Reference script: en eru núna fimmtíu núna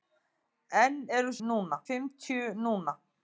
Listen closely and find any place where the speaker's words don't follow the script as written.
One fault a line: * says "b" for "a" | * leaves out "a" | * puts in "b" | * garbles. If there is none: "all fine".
all fine